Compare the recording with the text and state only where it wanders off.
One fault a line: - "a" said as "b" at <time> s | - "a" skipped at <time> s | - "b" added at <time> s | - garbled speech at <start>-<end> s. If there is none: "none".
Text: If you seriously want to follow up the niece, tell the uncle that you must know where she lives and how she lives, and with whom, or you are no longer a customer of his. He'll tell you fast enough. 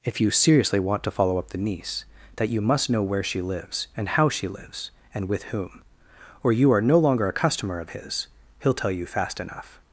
- "tell the uncle" skipped at 2.0 s